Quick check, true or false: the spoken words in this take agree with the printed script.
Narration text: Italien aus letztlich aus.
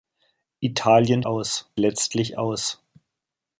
true